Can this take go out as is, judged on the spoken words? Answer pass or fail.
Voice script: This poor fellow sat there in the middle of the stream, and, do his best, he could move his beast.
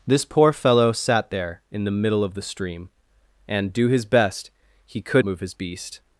pass